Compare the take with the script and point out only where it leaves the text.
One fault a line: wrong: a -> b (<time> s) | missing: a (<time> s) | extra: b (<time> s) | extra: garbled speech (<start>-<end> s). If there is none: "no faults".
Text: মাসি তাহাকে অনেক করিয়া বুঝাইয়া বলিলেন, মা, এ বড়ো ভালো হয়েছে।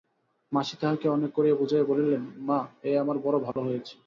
extra: আমার (3.0 s)